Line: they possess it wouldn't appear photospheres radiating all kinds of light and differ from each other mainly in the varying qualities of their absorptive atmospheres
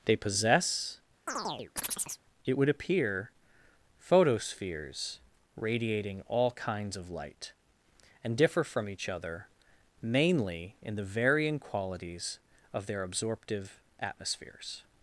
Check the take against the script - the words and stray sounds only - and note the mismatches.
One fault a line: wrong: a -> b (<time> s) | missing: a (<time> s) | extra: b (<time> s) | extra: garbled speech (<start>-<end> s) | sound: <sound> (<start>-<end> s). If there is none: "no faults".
sound: chirp (1.3-2.2 s)
wrong: wouldn't -> would (2.6 s)